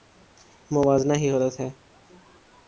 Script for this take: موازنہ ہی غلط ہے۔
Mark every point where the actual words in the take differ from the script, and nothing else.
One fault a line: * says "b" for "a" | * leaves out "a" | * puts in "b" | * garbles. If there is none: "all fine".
all fine